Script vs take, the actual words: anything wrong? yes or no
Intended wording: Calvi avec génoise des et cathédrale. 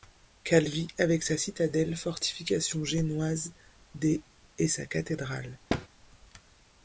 yes